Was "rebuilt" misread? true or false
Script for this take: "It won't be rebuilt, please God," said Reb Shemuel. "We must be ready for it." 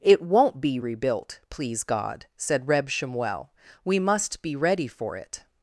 false